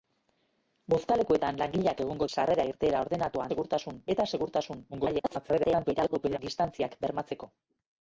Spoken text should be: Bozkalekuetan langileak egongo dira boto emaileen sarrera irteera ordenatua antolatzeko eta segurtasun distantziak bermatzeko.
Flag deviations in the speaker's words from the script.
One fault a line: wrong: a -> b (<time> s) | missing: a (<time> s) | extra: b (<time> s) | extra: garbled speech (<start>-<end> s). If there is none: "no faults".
missing: dira boto emaileen (2.3 s)
wrong: antolatzeko -> segurtasun (3.5 s)
extra: garbled speech (4.9-6.4 s)